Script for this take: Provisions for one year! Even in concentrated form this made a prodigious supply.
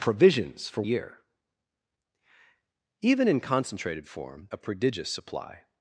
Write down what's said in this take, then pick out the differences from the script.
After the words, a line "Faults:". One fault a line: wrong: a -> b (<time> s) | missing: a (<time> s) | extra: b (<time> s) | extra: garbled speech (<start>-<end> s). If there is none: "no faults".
Provisions for year! Even in concentrated form a prodigious supply.
Faults:
missing: one (0.8 s)
missing: this made (4.5 s)